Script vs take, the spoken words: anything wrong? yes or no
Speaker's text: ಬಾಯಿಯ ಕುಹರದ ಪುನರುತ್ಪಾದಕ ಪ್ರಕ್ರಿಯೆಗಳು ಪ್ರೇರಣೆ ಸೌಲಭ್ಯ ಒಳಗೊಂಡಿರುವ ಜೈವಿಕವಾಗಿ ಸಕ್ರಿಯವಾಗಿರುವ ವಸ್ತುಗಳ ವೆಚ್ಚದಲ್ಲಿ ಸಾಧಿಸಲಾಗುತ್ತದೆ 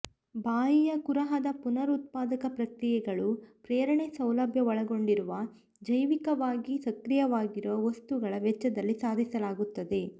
no